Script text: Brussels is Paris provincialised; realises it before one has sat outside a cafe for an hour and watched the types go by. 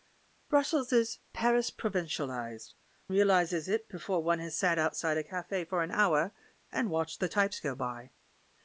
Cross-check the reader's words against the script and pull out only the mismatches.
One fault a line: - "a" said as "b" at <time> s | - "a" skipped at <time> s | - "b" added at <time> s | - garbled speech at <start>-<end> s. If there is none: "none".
none